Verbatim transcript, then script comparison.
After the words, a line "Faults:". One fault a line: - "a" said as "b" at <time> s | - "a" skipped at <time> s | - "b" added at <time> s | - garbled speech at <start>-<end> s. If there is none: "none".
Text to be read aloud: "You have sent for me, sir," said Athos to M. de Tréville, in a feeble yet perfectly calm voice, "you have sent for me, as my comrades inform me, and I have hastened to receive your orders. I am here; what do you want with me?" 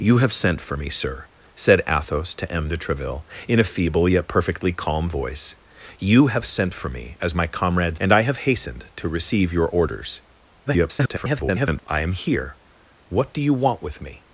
"You have sent for me, sir," said Athos to M. de Tréville, in a feeble yet perfectly calm voice, "you have sent for me, as my comrades and I have hastened to receive your orders. [garbled] I am here; what do you want with me?"
Faults:
- "inform me" skipped at 8.0 s
- garbled speech at 10.7-11.8 s